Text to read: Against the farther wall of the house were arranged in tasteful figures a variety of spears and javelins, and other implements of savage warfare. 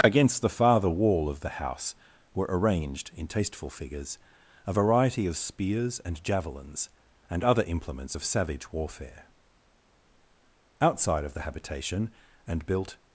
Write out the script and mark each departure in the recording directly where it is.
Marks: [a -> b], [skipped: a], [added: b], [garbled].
Against the farther wall of the house were arranged in tasteful figures a variety of spears and javelins, and other implements of savage warfare. [added: Outside of the habitation and built]